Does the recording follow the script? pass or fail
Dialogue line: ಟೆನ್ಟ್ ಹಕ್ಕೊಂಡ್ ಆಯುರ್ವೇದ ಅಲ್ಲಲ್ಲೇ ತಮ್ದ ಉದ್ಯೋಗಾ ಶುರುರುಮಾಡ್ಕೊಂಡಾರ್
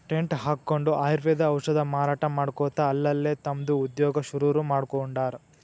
fail